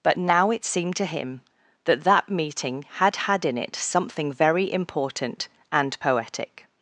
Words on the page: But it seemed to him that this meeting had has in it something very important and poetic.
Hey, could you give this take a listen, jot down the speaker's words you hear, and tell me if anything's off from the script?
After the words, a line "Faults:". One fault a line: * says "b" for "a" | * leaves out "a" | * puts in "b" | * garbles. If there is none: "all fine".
But now it seemed to him that that meeting had had in it something very important and poetic.
Faults:
* puts in "now"
* says "that" for "this"
* says "had" for "has"